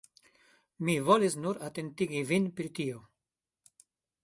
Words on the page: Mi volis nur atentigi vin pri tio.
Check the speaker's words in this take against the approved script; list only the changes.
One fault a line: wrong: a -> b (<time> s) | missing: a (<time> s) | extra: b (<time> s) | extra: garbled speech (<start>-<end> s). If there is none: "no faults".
no faults